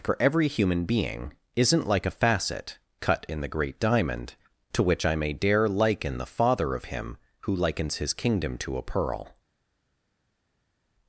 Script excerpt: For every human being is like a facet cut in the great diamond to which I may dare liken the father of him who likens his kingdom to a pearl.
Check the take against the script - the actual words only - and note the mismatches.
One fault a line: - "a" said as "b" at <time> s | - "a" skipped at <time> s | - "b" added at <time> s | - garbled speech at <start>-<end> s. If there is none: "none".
- "is" said as "isn't" at 1.6 s